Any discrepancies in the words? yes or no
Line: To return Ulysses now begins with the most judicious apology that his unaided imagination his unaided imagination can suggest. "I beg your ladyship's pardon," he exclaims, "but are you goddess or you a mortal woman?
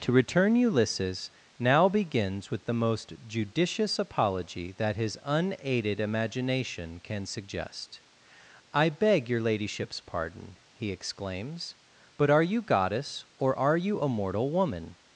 yes